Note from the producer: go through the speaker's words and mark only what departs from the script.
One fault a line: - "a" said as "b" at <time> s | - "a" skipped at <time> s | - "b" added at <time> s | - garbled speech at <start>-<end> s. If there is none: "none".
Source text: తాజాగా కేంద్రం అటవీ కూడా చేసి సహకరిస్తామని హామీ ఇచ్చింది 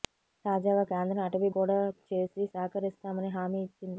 none